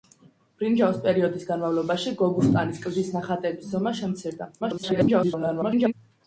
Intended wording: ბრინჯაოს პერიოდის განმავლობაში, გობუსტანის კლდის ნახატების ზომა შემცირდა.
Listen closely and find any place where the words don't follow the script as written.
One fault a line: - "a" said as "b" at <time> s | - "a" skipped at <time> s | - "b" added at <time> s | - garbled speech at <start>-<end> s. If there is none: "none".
- garbled speech at 4.6-5.9 s